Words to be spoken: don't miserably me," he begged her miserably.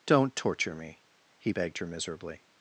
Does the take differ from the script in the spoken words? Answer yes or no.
yes